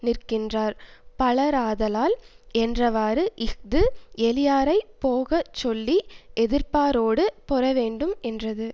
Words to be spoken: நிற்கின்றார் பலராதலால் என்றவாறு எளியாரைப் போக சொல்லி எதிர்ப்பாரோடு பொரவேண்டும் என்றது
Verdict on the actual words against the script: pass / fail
fail